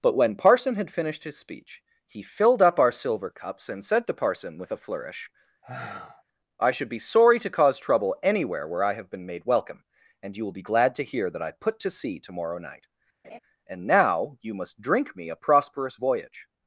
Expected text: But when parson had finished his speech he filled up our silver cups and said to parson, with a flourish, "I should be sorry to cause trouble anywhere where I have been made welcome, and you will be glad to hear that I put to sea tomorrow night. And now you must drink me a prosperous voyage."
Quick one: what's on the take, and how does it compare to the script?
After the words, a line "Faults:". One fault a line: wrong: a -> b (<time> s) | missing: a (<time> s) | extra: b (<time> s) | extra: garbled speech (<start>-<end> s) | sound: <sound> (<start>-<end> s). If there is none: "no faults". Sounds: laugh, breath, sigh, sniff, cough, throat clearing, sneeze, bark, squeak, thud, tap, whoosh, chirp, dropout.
But when parson had finished his speech he filled up our silver cups and said to parson, with a flourish, "I should be sorry to cause trouble anywhere where I have been made welcome, and you will be glad to hear that I put to sea tomorrow night. And now you must drink me a prosperous voyage."
Faults:
sound: sigh (5.6-6.2 s)
sound: laugh (13.2-13.4 s)